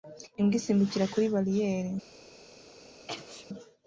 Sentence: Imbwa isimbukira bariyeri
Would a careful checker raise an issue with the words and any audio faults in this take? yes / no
yes